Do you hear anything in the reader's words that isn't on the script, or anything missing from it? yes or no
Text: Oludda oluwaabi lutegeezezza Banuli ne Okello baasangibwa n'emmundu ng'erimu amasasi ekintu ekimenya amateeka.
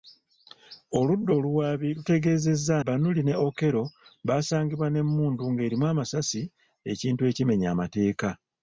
no